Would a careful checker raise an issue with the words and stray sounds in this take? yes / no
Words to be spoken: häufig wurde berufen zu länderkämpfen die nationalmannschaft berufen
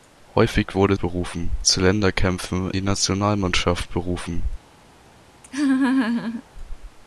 yes